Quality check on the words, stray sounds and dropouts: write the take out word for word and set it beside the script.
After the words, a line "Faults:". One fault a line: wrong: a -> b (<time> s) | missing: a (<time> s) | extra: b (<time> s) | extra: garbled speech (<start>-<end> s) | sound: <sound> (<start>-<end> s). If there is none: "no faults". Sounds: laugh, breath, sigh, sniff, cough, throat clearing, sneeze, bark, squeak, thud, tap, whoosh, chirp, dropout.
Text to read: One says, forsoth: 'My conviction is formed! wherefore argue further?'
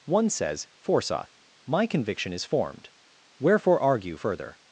One says, forsoth: 'My conviction is formed! wherefore argue further?'
Faults:
no faults